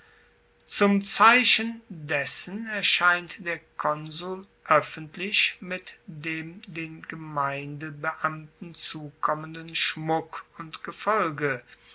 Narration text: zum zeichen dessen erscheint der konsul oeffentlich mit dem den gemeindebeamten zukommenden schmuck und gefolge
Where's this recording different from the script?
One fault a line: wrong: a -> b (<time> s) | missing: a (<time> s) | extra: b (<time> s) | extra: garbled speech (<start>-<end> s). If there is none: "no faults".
no faults